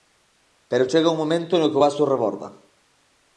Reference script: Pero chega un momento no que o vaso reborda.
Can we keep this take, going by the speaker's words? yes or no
yes